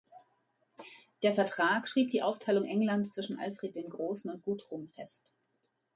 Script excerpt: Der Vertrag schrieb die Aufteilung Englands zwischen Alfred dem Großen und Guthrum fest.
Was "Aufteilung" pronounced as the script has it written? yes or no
yes